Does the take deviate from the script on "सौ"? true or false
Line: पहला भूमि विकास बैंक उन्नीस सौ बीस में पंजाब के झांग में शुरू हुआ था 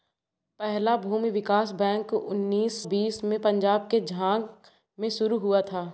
true